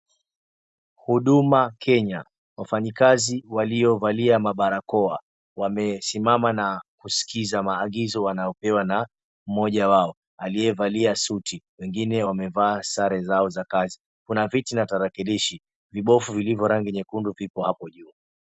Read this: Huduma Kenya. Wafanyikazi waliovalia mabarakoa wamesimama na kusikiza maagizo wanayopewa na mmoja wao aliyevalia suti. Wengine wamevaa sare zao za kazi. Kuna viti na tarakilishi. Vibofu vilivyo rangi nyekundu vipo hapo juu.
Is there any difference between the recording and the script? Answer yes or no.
no